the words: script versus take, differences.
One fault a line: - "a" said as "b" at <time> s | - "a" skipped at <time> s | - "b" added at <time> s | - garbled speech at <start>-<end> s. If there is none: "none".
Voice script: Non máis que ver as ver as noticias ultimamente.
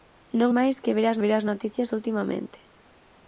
none